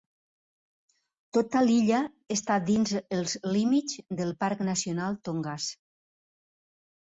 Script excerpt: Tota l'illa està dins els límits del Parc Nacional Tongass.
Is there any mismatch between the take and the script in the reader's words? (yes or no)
no